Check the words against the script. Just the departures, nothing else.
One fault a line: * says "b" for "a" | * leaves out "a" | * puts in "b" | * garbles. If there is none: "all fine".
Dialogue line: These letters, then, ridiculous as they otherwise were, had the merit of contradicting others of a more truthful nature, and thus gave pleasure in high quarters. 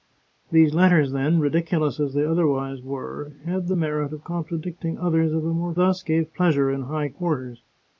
* leaves out "truthful nature and"